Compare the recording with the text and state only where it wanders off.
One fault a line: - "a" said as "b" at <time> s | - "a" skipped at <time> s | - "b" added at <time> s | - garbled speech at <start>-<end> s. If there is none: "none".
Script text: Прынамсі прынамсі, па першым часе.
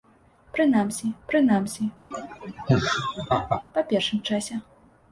none